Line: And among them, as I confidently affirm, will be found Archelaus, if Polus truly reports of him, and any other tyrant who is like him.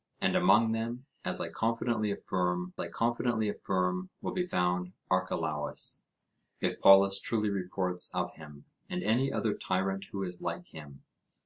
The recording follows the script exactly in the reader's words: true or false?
false